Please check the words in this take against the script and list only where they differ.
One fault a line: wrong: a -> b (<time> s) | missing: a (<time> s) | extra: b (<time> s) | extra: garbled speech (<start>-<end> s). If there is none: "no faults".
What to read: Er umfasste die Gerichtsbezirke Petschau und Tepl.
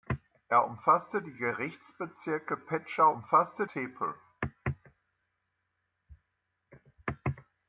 wrong: und -> umfasste (3.1 s)